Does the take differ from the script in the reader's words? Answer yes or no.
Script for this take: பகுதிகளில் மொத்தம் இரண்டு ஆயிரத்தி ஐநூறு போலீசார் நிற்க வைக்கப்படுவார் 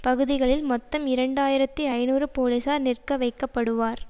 no